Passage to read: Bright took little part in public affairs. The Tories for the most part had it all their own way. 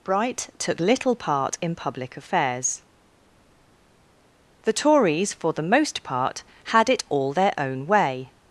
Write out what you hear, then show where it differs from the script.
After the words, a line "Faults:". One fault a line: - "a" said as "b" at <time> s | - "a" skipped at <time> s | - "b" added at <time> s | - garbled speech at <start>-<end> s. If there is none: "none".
Bright took little part in public affairs. The Tories for the most part had it all their own way.
Faults:
none